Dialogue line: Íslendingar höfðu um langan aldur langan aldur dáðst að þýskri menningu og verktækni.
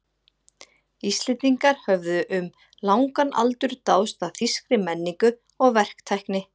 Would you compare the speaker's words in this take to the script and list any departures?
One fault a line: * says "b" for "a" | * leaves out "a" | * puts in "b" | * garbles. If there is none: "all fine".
* leaves out "langan aldur"